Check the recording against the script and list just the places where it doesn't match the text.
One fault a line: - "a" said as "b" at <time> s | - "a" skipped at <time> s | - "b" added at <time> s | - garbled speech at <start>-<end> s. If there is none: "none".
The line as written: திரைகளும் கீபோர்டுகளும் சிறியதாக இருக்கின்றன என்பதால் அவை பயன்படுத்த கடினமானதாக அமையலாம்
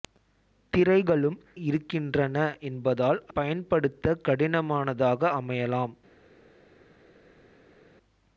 - "கீபோர்டுகளும் சிறியதாக" skipped at 1.4 s
- "அவை" skipped at 3.2 s